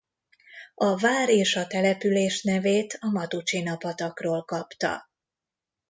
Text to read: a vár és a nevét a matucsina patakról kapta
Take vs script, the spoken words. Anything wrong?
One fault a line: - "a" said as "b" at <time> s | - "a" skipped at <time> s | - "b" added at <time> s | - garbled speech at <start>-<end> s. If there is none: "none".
- "település" added at 1.7 s